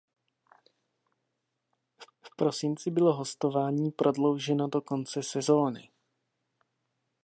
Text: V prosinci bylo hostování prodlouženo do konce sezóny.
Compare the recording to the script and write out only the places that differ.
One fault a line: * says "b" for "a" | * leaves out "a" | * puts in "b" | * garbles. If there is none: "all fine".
* puts in "v"